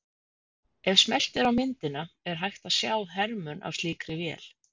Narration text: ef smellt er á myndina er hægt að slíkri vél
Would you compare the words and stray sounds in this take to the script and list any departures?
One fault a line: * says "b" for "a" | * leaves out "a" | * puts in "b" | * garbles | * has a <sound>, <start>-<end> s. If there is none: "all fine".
* puts in "sjá hermun af"